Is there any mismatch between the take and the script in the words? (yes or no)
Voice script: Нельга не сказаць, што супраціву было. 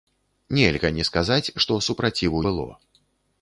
no